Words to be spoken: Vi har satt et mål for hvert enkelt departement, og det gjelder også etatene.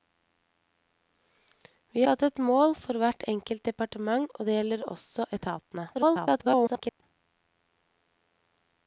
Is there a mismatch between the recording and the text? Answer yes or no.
yes